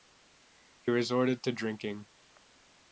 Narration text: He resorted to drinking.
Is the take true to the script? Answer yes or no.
yes